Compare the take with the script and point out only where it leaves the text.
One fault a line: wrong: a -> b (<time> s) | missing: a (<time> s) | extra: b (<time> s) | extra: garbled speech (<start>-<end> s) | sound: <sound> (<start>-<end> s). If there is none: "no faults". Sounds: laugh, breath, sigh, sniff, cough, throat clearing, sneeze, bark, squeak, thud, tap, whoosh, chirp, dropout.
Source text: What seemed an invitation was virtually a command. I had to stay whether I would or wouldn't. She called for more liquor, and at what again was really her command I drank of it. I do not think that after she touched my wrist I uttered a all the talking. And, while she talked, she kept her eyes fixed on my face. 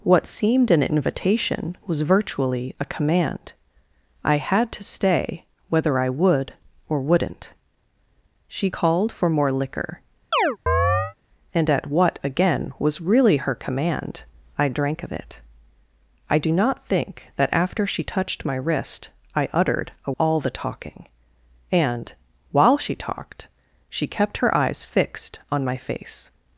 sound: chirp (10.3-11.1 s)